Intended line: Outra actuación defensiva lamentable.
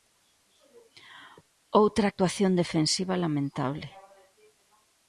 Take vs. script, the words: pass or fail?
pass